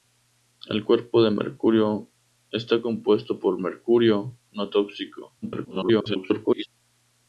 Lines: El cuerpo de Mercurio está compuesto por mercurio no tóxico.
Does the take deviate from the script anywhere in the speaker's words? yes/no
yes